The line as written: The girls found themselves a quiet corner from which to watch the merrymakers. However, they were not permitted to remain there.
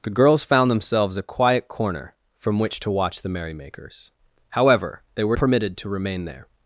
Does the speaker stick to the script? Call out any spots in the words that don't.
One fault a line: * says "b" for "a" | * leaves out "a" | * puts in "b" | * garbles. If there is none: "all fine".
* leaves out "not"